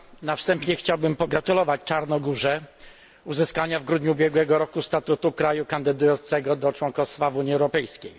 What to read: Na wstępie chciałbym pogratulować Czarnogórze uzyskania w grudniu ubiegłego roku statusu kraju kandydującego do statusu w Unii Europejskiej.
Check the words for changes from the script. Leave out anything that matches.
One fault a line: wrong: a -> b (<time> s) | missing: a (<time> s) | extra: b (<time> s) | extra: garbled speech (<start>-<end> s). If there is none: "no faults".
wrong: statusu -> członkostwa (6.7 s)